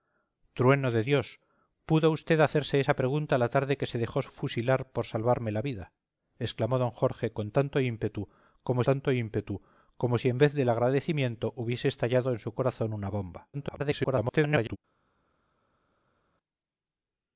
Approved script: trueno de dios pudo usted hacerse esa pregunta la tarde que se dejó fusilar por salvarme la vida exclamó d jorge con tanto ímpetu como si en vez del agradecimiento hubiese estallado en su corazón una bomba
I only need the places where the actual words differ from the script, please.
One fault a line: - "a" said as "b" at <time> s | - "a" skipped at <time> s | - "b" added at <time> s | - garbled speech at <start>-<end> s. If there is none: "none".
- "tanto ímpetu como" added at 8.9 s
- garbled speech at 13.5-14.8 s